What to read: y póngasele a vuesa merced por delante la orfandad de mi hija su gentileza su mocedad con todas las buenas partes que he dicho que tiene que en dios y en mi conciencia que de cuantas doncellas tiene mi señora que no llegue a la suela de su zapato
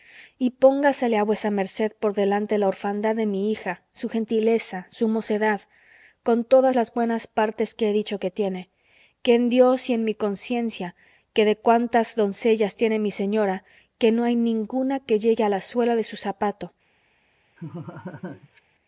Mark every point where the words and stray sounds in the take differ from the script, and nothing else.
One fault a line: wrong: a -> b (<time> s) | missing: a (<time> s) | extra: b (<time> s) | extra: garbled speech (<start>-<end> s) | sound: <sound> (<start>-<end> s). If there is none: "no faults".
extra: hay ninguna que (14.2 s)
sound: laugh (17.6-18.6 s)